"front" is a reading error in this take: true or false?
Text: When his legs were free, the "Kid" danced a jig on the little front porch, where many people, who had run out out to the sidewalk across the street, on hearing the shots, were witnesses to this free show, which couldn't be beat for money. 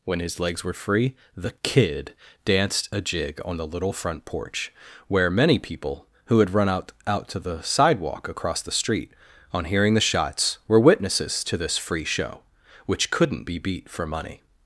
false